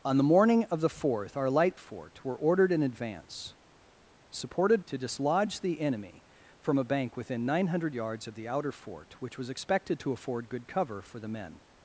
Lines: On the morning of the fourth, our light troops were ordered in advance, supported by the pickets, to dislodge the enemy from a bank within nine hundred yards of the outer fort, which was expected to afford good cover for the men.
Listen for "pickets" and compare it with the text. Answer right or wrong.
wrong